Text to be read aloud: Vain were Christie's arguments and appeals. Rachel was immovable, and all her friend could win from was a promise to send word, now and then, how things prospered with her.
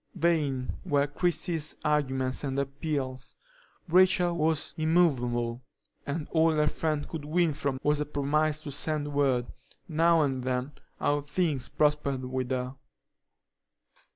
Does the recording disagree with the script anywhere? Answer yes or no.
no